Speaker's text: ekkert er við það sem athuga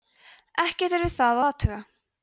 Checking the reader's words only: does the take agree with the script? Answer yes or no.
no